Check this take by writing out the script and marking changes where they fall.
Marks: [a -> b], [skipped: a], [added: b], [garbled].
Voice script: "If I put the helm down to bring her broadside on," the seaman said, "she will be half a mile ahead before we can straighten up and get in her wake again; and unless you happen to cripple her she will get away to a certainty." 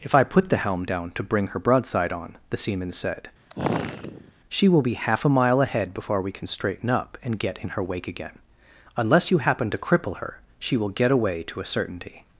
"If I put the helm down to bring her broadside on," the seaman said, "she will be half a mile ahead before we can straighten up and get in her wake again; [skipped: and] unless you happen to cripple her she will get away to a certainty."